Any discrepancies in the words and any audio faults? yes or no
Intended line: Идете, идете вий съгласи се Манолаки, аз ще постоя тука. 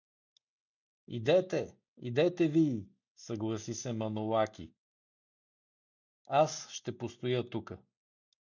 no